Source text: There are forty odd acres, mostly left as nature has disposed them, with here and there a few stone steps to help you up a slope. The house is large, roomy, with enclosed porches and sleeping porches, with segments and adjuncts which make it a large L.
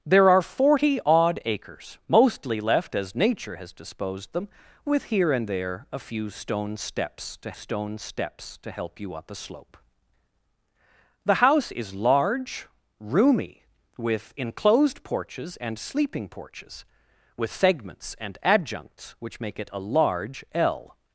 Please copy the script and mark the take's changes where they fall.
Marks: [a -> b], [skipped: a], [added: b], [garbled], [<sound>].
There are forty odd acres, mostly left as nature has disposed them, with here and there a few stone steps to [added: stone steps to] help you up a slope. The house is large, roomy, with enclosed porches and sleeping porches, with segments and adjuncts which make it a large L.